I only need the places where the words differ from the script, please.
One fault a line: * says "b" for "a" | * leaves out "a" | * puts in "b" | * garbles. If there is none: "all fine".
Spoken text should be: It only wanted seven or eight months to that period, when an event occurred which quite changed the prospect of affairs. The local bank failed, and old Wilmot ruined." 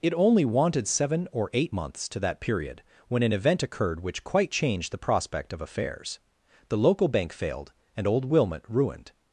all fine